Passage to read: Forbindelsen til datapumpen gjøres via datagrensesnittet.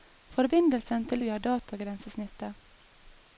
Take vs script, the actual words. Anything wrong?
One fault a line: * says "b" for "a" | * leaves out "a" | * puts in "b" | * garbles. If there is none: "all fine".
* leaves out "datapumpen gjøres"